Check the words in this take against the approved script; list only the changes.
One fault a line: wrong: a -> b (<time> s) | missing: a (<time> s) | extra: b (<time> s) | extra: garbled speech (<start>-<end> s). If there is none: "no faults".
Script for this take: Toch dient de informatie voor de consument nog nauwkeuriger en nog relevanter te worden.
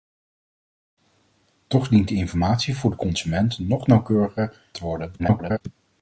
missing: en nog relevanter (4.6 s)
extra: garbled speech (5.2-5.6 s)